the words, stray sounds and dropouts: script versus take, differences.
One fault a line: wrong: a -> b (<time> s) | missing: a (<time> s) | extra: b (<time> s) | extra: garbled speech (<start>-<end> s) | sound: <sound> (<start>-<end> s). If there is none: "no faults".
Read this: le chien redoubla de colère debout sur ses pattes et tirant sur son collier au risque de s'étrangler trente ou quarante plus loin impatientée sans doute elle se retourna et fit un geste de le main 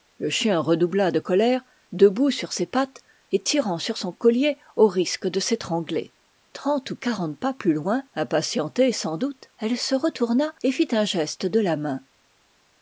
extra: pas (7.4 s)
wrong: le -> la (11.6 s)